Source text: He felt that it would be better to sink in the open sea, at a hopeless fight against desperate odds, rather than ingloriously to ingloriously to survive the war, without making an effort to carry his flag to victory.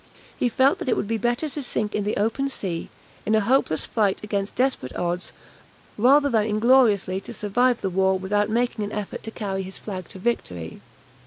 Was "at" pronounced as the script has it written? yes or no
no